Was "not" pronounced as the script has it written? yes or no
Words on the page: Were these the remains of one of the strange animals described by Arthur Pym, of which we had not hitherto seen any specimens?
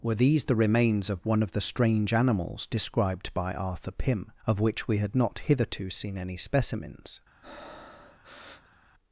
yes